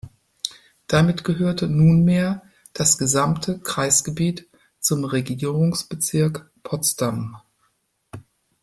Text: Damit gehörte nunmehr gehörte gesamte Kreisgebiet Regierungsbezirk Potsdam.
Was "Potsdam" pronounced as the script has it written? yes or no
yes